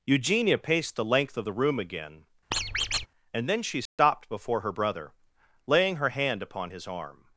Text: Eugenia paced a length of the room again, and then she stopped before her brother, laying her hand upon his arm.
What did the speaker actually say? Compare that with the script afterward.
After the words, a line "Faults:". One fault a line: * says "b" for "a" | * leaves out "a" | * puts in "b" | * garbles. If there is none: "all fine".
Eugenia paced the length of the room again, and then she stopped before her brother, laying her hand upon his arm.
Faults:
* says "the" for "a"